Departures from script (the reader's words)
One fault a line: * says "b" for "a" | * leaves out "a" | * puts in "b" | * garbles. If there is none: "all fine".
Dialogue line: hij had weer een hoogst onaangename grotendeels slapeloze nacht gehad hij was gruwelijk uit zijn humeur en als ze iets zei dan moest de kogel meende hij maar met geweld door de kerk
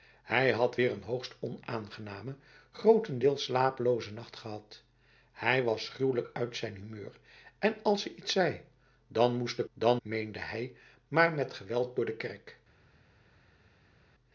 * says "dan" for "kogel"